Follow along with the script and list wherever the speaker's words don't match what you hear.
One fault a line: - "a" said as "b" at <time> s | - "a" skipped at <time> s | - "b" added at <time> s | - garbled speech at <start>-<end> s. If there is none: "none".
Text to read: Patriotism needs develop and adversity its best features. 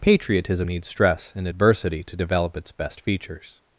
- "develop" said as "stress" at 0.9 s
- "to develop" added at 2.0 s